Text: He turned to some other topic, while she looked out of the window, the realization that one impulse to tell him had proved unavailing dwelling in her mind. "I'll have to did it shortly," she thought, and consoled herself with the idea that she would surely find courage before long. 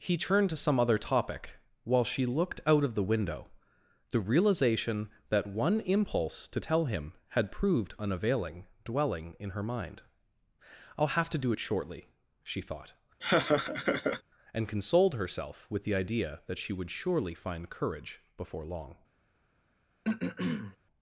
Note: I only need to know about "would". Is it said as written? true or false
true